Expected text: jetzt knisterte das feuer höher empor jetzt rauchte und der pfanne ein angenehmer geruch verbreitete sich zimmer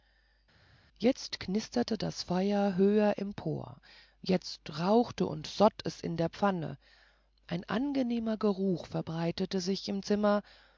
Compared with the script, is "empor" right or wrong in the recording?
right